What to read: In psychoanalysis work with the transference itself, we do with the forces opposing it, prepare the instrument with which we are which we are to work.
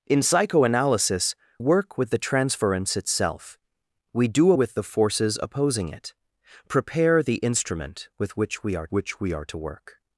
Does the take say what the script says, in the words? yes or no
yes